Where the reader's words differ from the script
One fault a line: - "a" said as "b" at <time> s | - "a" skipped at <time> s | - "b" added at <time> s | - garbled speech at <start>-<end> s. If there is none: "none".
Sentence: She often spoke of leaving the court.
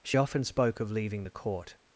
none